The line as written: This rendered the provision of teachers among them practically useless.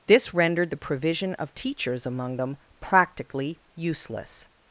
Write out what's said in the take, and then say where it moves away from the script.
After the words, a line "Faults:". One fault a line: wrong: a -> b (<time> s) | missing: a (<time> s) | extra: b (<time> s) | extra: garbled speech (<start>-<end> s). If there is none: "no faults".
This rendered the provision of teachers among them practically useless.
Faults:
no faults